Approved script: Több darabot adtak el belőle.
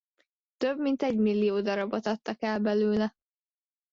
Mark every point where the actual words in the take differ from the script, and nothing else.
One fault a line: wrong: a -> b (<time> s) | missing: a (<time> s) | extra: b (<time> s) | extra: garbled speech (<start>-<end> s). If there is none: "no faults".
extra: mint egymillió (0.8 s)